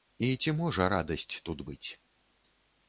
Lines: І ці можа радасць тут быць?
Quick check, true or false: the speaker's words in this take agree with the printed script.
true